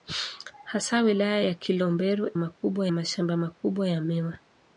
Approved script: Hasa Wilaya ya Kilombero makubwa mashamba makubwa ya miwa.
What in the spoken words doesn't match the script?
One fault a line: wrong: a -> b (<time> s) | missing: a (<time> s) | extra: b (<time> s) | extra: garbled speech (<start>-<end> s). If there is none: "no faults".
no faults